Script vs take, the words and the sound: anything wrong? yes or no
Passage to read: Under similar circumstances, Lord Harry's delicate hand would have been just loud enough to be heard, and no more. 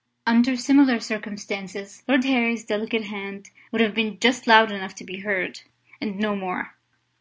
no